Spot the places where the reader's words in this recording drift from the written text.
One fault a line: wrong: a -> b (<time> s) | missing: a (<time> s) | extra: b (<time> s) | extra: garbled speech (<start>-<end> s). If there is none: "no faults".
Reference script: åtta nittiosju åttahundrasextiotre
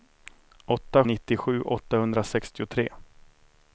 no faults